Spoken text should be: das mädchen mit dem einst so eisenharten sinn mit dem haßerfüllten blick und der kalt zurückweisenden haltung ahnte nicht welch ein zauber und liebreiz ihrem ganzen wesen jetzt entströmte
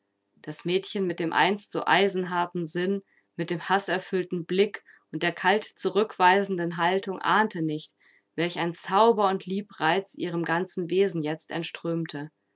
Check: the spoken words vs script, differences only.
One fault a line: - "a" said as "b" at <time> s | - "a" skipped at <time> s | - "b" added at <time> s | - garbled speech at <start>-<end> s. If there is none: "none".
none